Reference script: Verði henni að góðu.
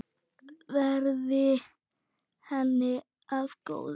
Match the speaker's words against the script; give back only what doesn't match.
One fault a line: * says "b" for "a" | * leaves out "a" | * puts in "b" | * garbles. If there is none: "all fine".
all fine